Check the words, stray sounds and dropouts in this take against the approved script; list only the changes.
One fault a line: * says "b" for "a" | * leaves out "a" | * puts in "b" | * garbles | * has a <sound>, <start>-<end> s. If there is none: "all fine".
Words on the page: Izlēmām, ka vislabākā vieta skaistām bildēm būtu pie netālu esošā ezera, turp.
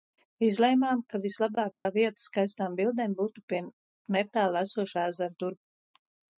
* has a dropout, 1.7-1.9 s